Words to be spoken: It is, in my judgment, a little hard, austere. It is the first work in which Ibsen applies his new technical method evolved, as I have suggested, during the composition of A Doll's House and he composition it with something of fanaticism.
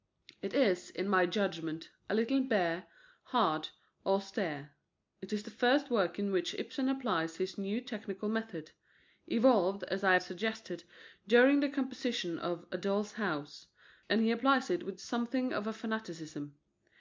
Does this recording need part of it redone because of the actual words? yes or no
yes